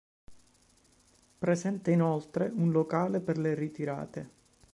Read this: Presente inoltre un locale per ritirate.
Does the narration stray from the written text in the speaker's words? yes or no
yes